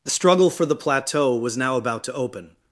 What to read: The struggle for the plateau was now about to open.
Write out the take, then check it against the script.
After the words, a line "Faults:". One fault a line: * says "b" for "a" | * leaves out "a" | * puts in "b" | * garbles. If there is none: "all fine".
The struggle for the plateau was now about to open.
Faults:
all fine